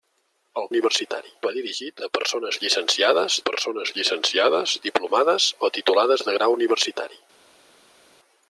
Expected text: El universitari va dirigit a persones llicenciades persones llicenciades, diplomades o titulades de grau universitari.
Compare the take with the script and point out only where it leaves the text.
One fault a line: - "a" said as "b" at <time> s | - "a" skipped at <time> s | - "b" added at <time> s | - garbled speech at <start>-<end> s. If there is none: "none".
none